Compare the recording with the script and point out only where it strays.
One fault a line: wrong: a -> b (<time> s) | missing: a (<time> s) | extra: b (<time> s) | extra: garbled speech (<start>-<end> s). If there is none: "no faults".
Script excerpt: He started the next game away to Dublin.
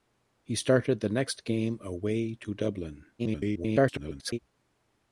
extra: garbled speech (3.2-4.4 s)